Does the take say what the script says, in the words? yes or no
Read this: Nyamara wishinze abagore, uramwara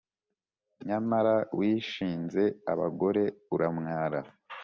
yes